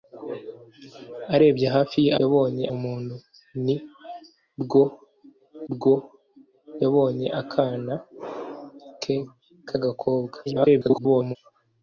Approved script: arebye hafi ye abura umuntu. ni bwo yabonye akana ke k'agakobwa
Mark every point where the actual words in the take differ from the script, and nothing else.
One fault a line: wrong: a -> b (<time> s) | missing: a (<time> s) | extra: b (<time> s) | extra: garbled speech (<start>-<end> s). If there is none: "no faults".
wrong: abura -> yabonye (2.2 s)
extra: bwo (5.7 s)
extra: garbled speech (10.5-11.4 s)